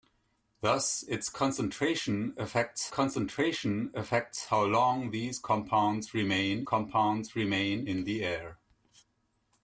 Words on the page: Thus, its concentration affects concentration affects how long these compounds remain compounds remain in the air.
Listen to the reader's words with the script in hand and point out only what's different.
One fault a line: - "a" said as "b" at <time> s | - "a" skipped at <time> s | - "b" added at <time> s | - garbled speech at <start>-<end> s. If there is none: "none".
none